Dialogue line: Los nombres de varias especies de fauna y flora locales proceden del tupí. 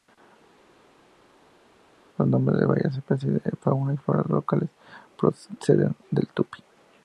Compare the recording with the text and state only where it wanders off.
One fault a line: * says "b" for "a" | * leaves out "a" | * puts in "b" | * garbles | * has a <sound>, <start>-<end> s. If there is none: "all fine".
all fine